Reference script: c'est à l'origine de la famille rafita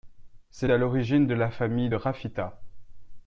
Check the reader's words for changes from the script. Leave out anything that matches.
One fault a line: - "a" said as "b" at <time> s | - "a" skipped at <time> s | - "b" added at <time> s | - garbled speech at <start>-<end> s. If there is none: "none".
none